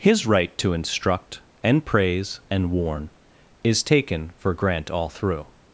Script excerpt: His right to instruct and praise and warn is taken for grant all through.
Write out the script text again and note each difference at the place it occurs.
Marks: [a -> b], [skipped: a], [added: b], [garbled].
His right to instruct and praise and warn is taken for grant all through.